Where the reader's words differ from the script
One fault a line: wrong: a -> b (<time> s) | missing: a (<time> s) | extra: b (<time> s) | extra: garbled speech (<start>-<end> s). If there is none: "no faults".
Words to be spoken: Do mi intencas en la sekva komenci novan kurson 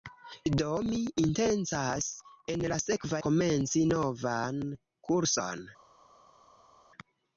no faults